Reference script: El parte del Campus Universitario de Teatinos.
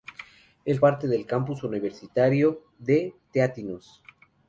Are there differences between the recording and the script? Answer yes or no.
no